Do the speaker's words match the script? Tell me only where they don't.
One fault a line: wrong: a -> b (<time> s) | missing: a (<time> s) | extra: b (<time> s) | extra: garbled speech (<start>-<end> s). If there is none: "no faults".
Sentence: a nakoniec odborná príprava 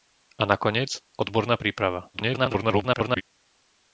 extra: garbled speech (2.1-3.2 s)